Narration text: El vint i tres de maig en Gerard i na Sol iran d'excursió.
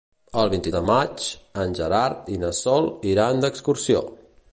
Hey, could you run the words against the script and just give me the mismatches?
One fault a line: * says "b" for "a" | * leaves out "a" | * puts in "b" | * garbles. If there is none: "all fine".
* leaves out "tres"